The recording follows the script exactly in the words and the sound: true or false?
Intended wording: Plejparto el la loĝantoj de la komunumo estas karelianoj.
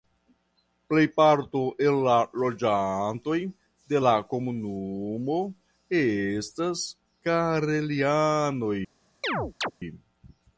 false